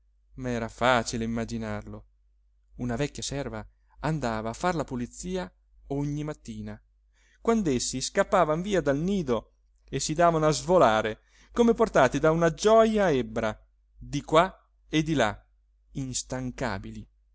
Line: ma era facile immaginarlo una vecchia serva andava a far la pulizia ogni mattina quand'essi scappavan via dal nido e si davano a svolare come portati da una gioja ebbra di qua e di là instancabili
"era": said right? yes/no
yes